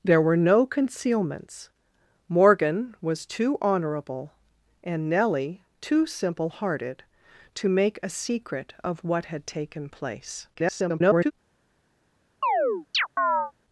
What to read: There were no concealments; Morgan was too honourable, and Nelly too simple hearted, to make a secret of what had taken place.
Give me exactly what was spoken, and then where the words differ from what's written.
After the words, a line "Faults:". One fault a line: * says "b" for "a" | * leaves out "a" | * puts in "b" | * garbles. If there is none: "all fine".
There were no concealments; Morgan was too honourable, and Nelly too simple hearted, to make a secret of what had taken place. [garbled]
Faults:
* garbles